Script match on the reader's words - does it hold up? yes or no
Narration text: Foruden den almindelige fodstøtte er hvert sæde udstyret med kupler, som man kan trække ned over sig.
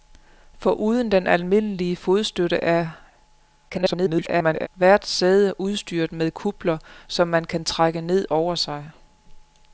no